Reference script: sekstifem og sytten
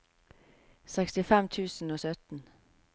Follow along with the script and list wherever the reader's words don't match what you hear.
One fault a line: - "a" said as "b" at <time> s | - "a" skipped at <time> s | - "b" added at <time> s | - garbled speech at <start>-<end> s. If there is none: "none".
- "tusen" added at 1.5 s